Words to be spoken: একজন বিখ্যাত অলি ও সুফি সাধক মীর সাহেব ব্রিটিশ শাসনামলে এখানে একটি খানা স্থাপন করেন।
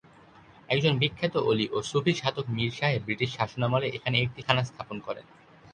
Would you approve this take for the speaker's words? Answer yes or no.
yes